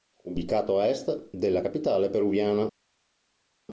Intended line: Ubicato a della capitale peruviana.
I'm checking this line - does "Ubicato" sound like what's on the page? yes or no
yes